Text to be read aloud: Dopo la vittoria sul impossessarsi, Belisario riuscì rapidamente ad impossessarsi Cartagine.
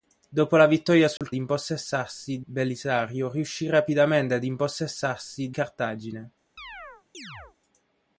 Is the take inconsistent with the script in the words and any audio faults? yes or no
yes